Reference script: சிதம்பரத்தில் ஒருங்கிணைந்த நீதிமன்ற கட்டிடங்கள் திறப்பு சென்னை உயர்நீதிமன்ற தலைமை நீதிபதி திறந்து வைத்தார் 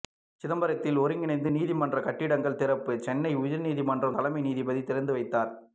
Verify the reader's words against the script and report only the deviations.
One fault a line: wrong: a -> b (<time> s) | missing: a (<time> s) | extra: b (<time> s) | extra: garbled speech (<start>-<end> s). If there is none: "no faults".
no faults